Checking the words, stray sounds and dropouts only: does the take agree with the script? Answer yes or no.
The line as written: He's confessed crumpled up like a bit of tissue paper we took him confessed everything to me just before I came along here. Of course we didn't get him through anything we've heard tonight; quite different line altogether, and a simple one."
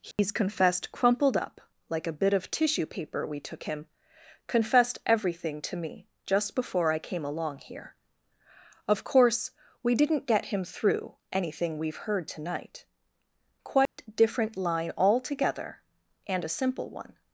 no